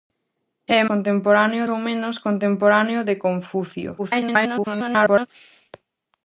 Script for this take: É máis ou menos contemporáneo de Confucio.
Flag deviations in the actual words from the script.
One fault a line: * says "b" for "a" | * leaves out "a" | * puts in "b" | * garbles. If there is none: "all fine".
* says "contemporáneo" for "máis"
* garbles